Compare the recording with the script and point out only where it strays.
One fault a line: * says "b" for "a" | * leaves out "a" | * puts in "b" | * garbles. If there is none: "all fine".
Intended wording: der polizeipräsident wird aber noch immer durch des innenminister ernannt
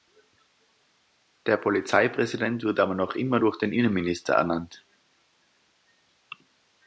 * says "den" for "des"